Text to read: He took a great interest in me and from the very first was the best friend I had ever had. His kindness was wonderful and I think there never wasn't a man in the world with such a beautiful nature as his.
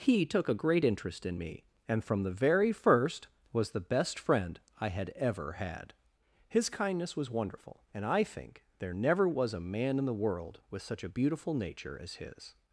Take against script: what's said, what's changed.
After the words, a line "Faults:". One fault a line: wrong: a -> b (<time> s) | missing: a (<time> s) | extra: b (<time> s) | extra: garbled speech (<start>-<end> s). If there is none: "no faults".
He took a great interest in me and from the very first was the best friend I had ever had. His kindness was wonderful and I think there never was a man in the world with such a beautiful nature as his.
Faults:
wrong: wasn't -> was (9.3 s)